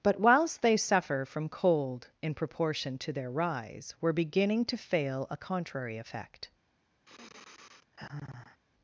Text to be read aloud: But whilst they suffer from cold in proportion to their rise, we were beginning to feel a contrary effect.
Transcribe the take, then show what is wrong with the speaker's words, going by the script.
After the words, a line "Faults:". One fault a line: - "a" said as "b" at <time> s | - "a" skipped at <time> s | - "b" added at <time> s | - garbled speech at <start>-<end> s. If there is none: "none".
But whilst they suffer from cold in proportion to their rise, were beginning to fail a contrary effect.
Faults:
- "we" skipped at 3.9 s
- "feel" said as "fail" at 4.8 s